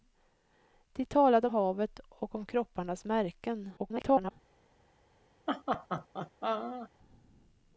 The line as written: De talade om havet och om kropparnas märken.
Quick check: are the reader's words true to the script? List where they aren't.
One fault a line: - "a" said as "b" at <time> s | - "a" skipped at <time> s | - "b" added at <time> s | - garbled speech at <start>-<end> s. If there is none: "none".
- "om" skipped at 1.5 s
- garbled speech at 3.8-4.3 s